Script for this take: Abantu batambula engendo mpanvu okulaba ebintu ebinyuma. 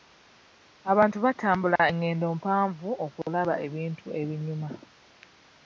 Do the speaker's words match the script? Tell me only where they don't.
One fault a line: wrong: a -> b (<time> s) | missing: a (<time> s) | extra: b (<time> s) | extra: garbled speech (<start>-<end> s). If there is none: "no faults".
no faults